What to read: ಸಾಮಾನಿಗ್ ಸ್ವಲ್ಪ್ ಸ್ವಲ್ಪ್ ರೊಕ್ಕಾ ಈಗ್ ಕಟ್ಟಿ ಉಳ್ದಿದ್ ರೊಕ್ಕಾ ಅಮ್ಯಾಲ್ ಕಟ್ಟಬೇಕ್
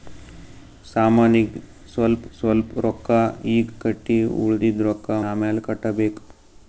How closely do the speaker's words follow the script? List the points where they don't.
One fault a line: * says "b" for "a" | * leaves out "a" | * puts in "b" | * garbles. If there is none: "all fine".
all fine